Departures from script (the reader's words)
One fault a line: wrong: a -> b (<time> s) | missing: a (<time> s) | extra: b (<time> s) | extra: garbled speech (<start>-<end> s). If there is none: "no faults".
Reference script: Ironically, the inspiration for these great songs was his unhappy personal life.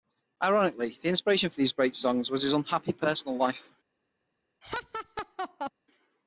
no faults